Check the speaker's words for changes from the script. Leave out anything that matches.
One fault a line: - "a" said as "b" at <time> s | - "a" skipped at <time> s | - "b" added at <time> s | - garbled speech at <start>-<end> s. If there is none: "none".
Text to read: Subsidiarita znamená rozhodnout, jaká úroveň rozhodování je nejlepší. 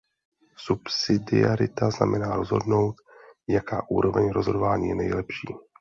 none